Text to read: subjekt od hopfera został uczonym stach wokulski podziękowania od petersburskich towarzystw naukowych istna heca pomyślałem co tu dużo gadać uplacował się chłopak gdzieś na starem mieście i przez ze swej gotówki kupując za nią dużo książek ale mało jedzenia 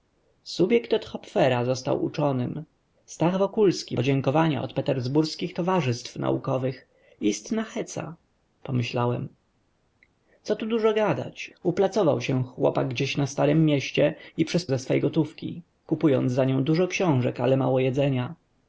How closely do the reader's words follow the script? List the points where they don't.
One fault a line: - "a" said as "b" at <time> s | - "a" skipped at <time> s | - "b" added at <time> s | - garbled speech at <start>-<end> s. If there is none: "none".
none